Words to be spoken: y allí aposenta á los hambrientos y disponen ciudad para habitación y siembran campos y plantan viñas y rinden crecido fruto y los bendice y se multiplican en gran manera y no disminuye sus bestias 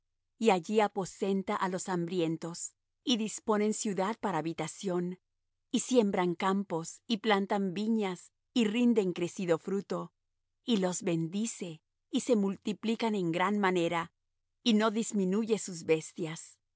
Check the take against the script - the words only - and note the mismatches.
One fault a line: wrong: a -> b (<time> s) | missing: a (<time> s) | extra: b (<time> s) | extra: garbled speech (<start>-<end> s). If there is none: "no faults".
no faults